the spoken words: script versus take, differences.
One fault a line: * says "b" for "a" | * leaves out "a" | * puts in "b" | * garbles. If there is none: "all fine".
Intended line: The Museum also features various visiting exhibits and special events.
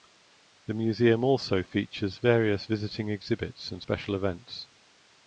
all fine